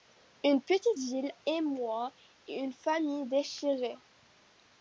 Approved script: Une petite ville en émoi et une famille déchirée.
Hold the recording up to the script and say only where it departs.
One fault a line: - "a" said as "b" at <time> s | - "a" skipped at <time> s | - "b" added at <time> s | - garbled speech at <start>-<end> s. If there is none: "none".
- "en" skipped at 1.3 s